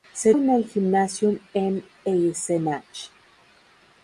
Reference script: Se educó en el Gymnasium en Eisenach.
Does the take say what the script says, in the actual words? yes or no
no